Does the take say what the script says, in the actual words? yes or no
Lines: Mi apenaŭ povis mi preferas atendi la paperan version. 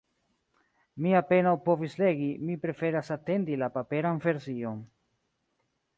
no